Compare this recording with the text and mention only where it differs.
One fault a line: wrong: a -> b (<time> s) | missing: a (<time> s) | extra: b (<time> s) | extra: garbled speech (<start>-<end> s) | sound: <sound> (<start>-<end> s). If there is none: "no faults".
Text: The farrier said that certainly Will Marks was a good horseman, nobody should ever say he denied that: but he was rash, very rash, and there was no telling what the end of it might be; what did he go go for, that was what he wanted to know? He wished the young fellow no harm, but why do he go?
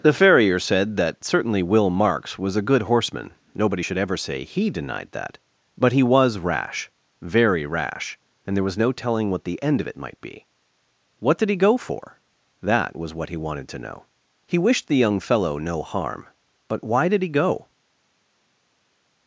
missing: go (11.8 s)
wrong: do -> did (17.1 s)